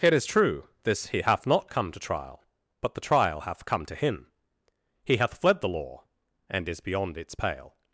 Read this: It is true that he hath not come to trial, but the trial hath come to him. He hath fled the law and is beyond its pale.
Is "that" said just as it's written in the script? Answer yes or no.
no